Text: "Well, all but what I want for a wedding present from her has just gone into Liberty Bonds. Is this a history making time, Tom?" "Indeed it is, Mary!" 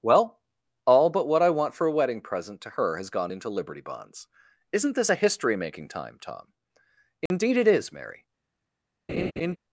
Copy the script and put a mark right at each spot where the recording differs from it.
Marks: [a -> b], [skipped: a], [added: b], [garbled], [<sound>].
"Well, all but what I want for a wedding present [from -> to] her has [skipped: just] gone into Liberty Bonds. [Is -> Isn't] this a history making time, Tom?" "Indeed [dropout] it is, Mary!" [laugh]